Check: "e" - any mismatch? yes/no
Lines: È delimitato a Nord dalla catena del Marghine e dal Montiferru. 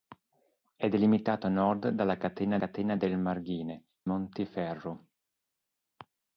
yes